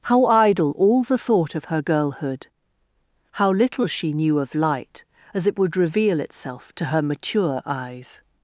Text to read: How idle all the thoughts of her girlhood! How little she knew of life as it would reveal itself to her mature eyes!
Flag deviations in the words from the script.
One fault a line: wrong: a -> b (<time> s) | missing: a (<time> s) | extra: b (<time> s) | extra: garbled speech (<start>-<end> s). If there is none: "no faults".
wrong: thoughts -> thought (1.2 s)
wrong: life -> light (4.6 s)